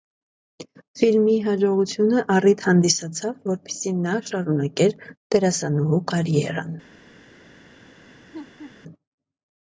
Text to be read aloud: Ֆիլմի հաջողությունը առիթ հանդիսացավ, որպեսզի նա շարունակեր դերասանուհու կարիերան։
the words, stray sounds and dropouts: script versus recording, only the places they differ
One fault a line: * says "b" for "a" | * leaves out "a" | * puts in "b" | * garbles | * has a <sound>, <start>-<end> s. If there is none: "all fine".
* has a laugh, 8.0-8.8 s